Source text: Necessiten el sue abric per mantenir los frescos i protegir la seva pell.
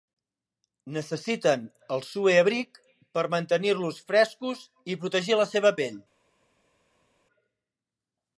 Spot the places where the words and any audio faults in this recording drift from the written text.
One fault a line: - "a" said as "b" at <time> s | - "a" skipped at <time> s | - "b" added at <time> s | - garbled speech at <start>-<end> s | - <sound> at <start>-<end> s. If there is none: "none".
none